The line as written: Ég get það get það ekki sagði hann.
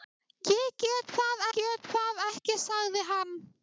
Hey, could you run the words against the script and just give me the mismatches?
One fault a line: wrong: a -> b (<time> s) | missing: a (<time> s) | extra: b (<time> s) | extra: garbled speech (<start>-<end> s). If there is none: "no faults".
no faults